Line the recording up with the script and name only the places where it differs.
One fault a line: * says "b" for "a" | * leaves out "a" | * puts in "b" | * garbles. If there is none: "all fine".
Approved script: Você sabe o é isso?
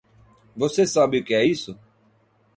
* puts in "que"